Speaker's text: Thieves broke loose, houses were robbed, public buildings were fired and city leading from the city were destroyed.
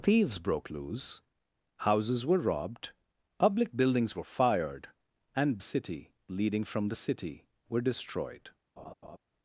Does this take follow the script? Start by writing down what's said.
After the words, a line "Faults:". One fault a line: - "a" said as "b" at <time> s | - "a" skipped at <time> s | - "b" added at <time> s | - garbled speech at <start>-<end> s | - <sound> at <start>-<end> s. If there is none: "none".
Thieves broke loose, houses were robbed, public buildings were fired and city leading from the city were destroyed.
Faults:
- laugh at 8.8-9.2 s